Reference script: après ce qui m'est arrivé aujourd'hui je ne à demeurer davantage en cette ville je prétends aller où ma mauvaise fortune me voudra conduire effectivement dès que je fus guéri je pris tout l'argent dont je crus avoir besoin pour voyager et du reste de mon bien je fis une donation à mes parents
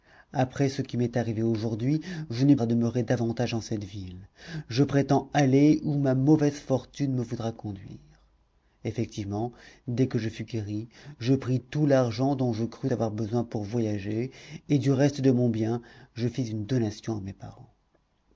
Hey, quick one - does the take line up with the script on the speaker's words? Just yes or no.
yes